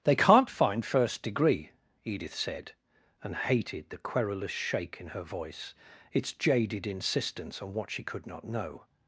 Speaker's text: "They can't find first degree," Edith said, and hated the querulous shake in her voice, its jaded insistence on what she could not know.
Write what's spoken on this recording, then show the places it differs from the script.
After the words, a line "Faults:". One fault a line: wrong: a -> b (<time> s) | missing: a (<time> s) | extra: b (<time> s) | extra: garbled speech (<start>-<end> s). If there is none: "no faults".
"They can't find first degree," Edith said, and hated the querulous shake in her voice, its jaded insistence on what she could not know.
Faults:
no faults